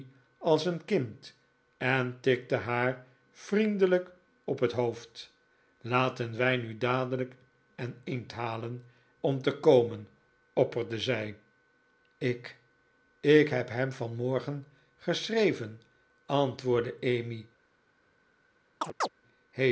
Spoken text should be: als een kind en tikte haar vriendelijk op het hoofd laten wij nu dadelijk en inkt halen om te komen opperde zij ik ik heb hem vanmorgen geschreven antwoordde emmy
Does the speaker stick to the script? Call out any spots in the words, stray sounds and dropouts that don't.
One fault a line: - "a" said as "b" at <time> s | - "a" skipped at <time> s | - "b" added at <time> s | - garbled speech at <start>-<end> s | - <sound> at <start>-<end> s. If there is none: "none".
- chirp at 18.8-19.1 s